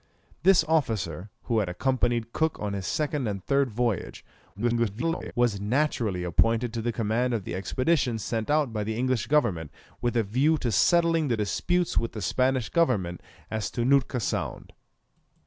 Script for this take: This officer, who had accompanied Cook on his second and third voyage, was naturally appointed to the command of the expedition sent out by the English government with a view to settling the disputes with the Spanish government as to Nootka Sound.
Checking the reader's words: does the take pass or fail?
fail